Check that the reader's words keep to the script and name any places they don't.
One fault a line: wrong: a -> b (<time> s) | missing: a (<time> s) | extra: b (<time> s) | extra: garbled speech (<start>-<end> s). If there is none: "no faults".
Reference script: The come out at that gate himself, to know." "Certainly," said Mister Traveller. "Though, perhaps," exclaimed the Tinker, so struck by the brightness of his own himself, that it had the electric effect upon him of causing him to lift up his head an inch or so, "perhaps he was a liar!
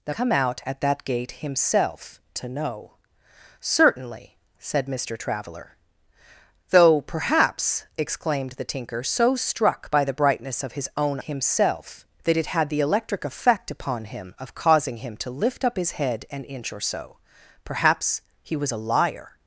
no faults